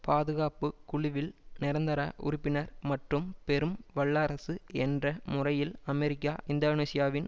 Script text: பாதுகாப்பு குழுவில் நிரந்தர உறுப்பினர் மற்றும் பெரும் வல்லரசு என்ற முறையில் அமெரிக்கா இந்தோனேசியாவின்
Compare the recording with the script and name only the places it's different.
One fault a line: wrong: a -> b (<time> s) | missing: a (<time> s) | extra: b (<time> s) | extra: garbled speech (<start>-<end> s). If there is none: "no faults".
no faults